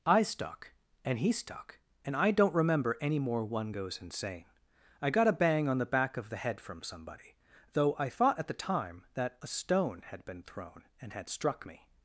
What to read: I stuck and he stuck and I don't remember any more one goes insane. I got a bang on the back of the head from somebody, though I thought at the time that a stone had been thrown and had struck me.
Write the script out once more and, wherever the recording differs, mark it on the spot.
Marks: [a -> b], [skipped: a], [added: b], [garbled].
I stuck and he stuck and I don't remember any more one goes insane. I got a bang on the back of the head from somebody, though I thought at the time that a stone had been thrown and had struck me.